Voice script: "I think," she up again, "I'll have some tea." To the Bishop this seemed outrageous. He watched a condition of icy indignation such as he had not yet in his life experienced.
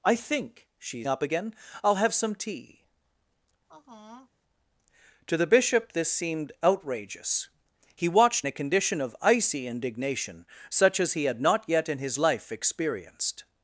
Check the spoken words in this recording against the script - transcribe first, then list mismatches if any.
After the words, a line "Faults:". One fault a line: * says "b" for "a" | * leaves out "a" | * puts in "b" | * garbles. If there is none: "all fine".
"I think," she up again, "I'll have some tea." To the Bishop this seemed outrageous. He watched a condition of icy indignation such as he had not yet in his life experienced.
Faults:
all fine